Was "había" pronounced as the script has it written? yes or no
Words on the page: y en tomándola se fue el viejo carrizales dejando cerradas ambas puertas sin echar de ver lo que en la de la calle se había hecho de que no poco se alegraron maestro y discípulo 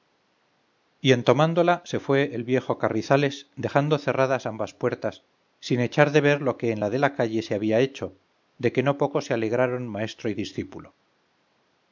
yes